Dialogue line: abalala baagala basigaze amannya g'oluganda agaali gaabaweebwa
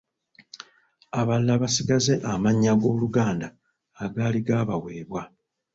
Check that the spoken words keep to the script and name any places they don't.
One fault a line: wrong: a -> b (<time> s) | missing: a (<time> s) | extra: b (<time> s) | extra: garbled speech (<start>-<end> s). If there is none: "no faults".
missing: baagala (1.6 s)